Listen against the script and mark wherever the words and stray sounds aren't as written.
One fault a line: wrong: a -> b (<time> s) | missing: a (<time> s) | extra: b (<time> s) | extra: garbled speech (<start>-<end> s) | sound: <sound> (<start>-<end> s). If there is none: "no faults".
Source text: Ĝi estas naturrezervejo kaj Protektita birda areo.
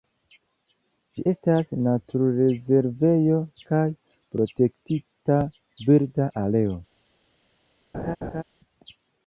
sound: laugh (7.9-8.4 s)